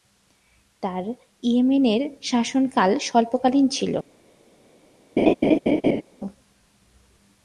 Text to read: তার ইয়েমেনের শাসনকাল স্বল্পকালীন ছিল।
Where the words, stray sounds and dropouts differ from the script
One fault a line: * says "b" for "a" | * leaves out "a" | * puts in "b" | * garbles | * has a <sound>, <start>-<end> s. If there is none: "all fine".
* has a laugh, 5.2-6.0 s